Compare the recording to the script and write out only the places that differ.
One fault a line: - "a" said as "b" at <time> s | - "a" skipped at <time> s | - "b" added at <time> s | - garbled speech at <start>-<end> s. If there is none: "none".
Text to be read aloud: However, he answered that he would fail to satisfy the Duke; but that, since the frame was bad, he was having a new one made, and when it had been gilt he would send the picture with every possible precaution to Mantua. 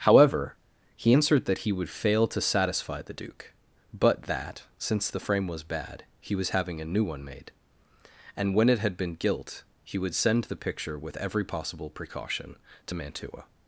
none